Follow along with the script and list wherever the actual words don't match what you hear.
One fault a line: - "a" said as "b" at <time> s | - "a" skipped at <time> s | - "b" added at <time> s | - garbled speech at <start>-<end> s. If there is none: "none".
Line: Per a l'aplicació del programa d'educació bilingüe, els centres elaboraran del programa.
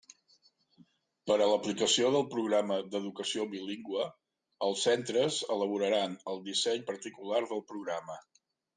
- "el disseny particular" added at 6.3 s